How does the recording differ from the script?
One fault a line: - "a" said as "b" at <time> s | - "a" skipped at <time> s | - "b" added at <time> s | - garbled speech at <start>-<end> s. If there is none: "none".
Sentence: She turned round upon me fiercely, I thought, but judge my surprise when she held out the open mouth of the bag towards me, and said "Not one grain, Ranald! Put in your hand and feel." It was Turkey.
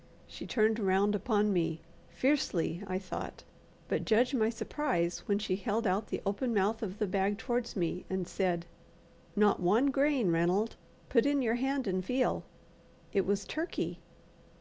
none